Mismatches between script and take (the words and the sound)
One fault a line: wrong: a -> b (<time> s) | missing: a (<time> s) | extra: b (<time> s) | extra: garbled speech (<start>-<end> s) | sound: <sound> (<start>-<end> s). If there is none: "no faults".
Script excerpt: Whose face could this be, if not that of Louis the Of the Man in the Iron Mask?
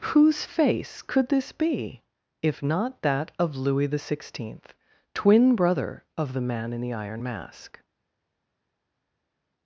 extra: Sixteenth twin brother (4.0 s)